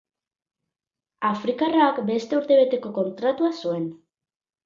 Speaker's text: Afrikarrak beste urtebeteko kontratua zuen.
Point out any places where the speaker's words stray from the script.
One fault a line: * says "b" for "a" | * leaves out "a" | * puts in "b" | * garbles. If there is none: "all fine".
all fine